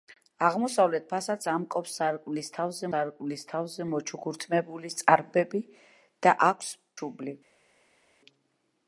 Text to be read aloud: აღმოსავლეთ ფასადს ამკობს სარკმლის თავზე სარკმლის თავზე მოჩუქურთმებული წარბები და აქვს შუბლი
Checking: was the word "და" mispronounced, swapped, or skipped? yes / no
no